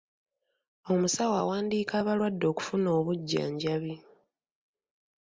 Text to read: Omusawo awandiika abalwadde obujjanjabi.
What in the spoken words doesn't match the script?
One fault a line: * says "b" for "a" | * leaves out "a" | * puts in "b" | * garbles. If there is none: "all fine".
* puts in "okufuna"